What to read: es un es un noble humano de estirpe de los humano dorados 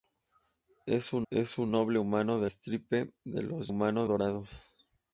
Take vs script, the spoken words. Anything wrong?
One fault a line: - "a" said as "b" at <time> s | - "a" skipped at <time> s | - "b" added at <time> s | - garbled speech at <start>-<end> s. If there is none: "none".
none